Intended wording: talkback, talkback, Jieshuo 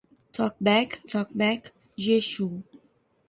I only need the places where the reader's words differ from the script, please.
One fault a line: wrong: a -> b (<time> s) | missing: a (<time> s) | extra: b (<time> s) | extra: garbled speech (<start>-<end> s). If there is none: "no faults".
no faults